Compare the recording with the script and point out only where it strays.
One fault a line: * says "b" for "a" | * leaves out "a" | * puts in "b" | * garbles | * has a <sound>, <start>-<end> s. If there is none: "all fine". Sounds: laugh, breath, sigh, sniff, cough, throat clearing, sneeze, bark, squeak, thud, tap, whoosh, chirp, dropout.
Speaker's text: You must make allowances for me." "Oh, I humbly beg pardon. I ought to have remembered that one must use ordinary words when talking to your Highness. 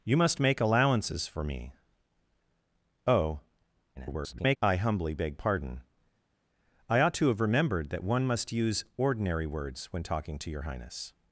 * garbles